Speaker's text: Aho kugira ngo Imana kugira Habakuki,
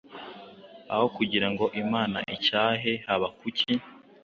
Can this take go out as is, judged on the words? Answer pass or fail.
fail